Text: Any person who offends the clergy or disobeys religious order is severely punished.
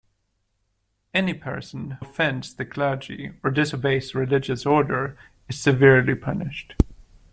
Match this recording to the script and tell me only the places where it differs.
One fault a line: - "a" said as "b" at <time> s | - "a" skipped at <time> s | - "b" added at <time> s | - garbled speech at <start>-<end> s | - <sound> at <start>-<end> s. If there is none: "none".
- "who" skipped at 2.0 s